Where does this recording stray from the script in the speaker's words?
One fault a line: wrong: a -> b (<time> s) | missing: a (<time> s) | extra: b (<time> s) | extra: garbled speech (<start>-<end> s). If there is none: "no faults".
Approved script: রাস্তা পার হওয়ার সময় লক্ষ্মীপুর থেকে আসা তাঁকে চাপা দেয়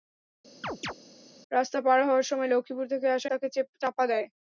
no faults